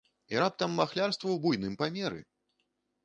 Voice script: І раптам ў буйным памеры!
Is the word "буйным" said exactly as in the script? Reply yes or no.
yes